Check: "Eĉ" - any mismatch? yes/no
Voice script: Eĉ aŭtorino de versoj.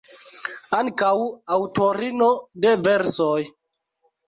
yes